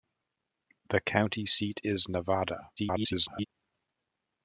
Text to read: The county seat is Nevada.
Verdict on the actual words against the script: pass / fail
fail